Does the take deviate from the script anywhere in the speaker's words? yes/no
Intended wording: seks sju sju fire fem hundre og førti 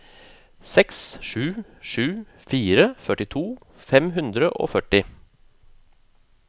yes